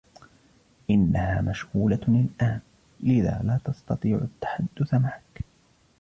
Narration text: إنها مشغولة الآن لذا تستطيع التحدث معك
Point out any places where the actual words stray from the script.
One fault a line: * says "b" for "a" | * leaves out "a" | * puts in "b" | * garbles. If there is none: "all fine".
* puts in "لا"